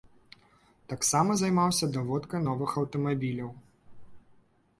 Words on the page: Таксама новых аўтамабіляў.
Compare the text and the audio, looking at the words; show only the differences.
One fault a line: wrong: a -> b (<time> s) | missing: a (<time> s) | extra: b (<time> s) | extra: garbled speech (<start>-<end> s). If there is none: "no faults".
extra: займаўся даводкай (1.4 s)